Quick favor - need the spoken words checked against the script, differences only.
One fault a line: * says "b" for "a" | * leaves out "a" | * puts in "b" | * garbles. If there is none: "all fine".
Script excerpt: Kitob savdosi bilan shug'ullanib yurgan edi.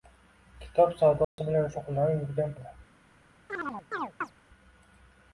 all fine